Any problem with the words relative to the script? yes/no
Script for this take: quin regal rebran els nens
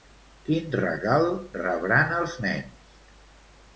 no